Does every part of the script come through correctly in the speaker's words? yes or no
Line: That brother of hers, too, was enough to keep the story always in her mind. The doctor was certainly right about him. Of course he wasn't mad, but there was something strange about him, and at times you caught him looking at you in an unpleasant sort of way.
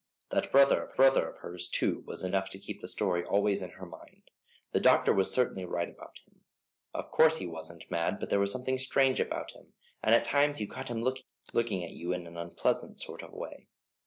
no